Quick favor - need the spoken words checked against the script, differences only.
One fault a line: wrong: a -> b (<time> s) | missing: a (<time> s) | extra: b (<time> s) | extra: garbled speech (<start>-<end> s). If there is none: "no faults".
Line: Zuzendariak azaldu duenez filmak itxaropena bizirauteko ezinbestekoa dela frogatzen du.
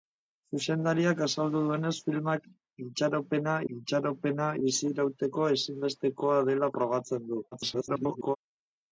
extra: itxaropena (3.8 s)
extra: garbled speech (7.5-8.4 s)